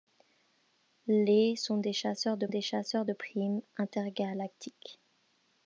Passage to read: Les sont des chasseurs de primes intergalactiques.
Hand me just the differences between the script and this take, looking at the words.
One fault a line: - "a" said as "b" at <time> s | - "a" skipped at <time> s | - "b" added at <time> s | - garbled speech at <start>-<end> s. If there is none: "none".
- "des chasseurs de" added at 2.5 s